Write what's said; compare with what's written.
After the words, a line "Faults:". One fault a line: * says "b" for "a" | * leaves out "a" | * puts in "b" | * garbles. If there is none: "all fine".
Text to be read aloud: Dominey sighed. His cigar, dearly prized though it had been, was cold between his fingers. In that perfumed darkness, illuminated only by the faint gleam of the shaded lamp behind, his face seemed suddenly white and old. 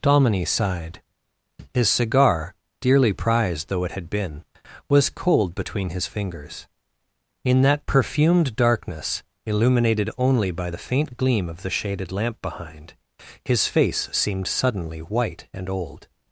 Dominey sighed. His cigar, dearly prized though it had been, was cold between his fingers. In that perfumed darkness, illuminated only by the faint gleam of the shaded lamp behind, his face seemed suddenly white and old.
Faults:
all fine